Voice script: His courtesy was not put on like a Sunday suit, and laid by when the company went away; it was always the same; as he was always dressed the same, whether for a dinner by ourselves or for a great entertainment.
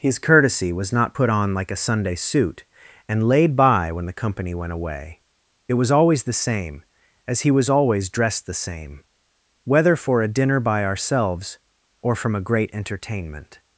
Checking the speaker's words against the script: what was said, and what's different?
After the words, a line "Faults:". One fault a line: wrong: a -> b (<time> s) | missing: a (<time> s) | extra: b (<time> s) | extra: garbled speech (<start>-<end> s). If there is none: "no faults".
His courtesy was not put on like a Sunday suit, and laid by when the company went away; it was always the same; as he was always dressed the same, whether for a dinner by ourselves or from a great entertainment.
Faults:
wrong: for -> from (12.1 s)